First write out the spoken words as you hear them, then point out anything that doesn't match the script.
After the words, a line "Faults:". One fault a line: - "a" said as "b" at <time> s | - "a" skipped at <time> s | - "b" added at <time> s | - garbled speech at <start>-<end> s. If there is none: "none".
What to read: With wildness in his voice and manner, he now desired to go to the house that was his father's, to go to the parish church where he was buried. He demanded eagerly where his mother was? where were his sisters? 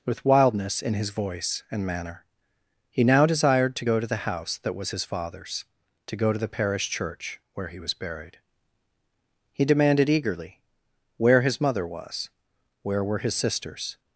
With wildness in his voice and manner, he now desired to go to the house that was his father's, to go to the parish church where he was buried. He demanded eagerly where his mother was? where were his sisters?
Faults:
none